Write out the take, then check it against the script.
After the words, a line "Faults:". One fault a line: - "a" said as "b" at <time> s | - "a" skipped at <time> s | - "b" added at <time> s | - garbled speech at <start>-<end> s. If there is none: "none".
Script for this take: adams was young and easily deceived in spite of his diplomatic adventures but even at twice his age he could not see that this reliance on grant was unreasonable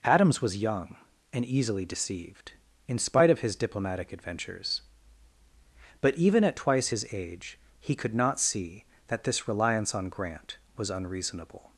adams was young and easily deceived in spite of his diplomatic adventures but even at twice his age he could not see that this reliance on grant was unreasonable
Faults:
none